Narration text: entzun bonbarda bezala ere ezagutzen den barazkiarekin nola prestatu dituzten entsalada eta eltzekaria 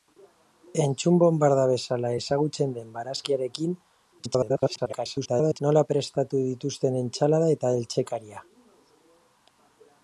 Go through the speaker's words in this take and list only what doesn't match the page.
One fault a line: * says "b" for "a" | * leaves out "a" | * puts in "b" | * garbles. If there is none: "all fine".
* leaves out "ere"
* garbles